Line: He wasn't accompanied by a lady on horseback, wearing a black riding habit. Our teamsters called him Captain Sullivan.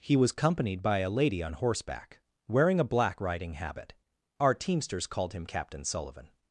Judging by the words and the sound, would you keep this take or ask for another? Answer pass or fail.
fail